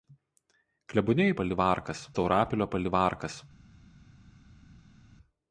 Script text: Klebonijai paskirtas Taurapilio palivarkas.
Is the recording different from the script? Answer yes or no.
yes